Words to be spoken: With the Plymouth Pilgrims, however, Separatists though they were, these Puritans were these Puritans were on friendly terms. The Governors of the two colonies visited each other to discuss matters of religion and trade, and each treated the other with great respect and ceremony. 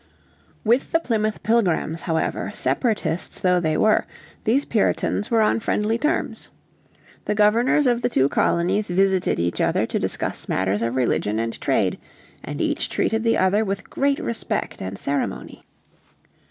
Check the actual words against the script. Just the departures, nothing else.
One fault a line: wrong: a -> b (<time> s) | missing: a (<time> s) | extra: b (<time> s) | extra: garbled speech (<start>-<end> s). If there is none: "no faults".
missing: these Puritans were (5.4 s)